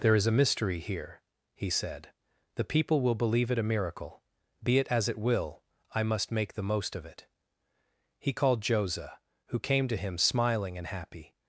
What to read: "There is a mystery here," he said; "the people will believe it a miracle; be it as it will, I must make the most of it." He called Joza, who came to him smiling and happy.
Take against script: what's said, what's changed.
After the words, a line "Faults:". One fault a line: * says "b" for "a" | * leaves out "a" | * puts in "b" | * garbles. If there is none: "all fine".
"There is a mystery here," he said; "the people will believe it a miracle; be it as it will, I must make the most of it." He called Joza, who came to him smiling and happy.
Faults:
all fine